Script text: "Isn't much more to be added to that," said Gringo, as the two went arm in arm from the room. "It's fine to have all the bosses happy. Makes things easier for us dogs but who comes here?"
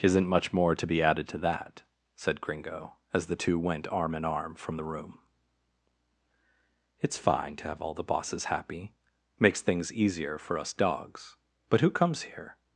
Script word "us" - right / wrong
right